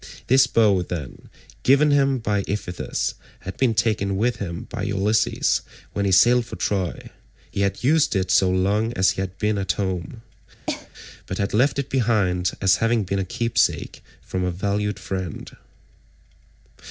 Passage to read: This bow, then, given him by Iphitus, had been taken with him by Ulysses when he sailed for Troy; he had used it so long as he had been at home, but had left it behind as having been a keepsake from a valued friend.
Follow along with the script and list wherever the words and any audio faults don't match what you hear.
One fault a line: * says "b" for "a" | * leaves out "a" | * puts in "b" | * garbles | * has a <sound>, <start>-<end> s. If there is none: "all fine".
* has a cough, 10.7-10.9 s